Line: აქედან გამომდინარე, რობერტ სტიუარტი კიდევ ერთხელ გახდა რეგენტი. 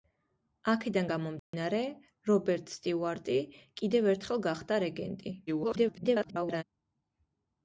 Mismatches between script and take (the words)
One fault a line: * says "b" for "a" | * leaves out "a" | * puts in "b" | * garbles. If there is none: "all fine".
* garbles